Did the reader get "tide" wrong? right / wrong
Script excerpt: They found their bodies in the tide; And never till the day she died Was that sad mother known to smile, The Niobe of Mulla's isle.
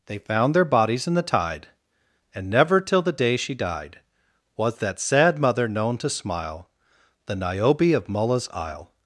right